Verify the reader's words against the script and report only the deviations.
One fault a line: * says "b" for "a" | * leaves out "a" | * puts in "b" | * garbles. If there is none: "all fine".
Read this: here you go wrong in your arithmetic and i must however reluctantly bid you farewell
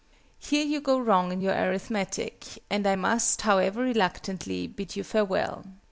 all fine